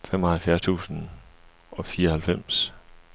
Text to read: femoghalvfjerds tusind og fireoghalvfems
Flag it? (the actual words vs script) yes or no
no